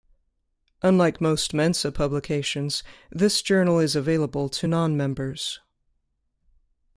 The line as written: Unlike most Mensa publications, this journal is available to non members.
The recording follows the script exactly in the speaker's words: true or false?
true